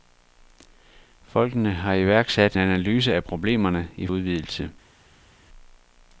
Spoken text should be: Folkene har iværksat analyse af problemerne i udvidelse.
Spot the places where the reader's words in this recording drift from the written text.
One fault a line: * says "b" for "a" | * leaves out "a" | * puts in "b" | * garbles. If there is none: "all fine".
all fine